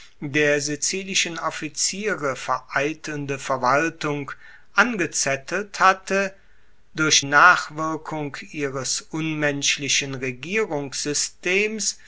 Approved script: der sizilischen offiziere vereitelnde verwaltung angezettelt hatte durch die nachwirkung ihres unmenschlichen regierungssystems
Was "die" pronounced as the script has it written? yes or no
no